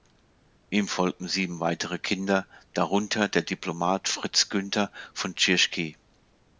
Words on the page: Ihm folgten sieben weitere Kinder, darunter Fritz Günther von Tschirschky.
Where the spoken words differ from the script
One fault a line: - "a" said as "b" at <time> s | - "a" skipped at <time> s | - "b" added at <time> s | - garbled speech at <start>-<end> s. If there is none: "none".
- "der Diplomat" added at 3.3 s